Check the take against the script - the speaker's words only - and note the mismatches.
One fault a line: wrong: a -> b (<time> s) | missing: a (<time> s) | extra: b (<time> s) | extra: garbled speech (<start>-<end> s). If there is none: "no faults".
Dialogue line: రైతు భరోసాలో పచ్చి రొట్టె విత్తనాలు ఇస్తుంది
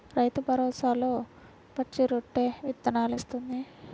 no faults